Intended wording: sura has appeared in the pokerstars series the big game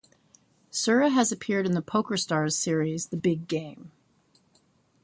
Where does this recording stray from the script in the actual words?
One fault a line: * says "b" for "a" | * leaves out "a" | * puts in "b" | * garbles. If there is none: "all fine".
all fine